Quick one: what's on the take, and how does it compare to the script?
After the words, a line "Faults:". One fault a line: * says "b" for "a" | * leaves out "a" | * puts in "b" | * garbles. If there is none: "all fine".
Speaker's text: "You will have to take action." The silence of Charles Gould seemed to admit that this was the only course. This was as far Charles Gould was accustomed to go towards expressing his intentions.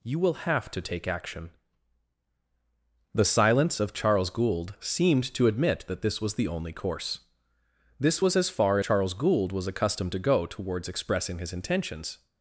"You will have to take action." The silence of Charles Gould seemed to admit that this was the only course. This was as far Charles Gould was accustomed to go towards expressing his intentions.
Faults:
all fine